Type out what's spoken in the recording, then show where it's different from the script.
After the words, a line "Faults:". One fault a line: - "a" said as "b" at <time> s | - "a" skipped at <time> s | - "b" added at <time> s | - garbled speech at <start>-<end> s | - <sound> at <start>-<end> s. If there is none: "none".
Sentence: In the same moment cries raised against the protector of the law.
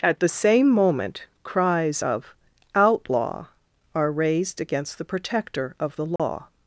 At the same moment cries of Outlaw are raised against the protector of the law.
Faults:
- "In" said as "At" at 0.0 s
- "of Outlaw are" added at 2.0 s
- dropout at 6.2-6.2 s